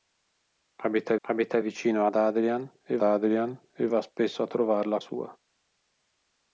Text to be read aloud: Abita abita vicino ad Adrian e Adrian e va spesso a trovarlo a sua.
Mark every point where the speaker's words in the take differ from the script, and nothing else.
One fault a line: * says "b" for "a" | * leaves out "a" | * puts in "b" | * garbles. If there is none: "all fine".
all fine